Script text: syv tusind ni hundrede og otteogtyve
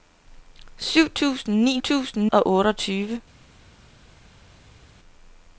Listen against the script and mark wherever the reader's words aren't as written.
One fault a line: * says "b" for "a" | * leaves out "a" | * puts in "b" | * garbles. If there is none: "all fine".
* says "tusind" for "hundrede"